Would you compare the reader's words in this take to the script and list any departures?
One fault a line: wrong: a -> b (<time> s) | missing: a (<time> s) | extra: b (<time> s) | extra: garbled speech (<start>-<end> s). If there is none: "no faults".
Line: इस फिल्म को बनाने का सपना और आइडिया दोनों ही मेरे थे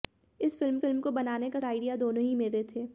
extra: फिल्म (0.8 s)
missing: सपना और (1.6 s)